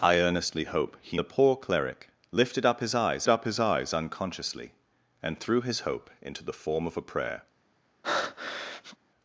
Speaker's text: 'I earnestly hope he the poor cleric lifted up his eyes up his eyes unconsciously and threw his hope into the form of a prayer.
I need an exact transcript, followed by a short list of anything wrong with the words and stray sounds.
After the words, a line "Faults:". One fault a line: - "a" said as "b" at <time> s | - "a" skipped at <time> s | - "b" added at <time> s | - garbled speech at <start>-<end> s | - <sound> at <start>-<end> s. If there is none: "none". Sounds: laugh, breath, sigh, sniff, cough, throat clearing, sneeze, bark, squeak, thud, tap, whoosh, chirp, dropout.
'I earnestly hope he the poor cleric lifted up his eyes up his eyes unconsciously and threw his hope into the form of a prayer.
Faults:
- breath at 8.0-9.0 s